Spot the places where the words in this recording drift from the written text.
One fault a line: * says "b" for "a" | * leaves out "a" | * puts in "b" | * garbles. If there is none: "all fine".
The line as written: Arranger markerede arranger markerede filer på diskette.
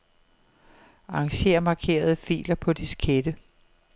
* leaves out "arranger markerede"